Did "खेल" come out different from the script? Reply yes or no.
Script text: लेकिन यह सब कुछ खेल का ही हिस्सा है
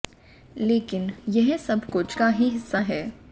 yes